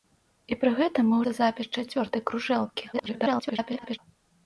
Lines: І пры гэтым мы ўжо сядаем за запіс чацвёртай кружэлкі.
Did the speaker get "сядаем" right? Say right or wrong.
wrong